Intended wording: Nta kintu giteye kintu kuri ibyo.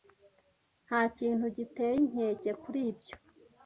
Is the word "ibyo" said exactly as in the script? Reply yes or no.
yes